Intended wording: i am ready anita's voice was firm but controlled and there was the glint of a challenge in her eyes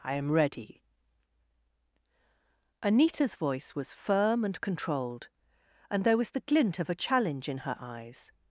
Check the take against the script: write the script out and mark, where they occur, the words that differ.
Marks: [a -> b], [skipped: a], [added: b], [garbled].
i am ready anita's voice was firm [but -> and] controlled and there was the glint of a challenge in her eyes